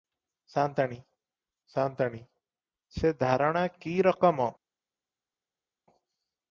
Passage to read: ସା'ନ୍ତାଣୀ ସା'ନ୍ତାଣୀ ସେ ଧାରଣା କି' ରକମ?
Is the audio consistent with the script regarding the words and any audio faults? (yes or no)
yes